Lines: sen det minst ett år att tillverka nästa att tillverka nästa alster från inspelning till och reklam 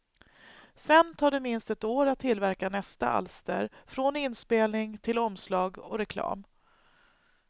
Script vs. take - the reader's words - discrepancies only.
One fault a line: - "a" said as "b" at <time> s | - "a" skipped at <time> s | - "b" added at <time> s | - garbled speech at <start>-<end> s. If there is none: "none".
- "tar" added at 1.1 s
- "att tillverka nästa" skipped at 3.1 s
- "omslag" added at 5.2 s